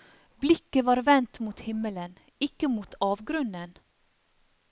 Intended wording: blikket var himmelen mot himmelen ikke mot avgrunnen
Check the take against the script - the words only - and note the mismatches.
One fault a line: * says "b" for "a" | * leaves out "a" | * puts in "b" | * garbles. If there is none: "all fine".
* says "vendt" for "himmelen"